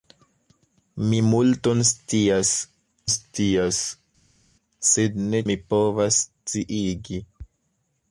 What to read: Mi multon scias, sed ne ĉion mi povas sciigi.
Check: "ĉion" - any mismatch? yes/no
yes